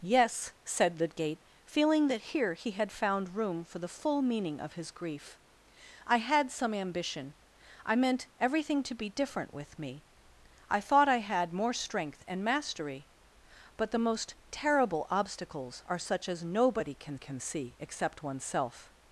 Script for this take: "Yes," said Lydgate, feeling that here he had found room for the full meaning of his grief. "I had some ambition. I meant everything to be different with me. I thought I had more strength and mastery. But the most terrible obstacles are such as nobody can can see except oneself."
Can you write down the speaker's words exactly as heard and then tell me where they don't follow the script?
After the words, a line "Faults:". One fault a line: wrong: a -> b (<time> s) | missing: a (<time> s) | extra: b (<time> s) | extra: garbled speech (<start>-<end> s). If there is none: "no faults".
"Yes," said Lydgate, feeling that here he had found room for the full meaning of his grief. "I had some ambition. I meant everything to be different with me. I thought I had more strength and mastery. But the most terrible obstacles are such as nobody can can see except oneself."
Faults:
no faults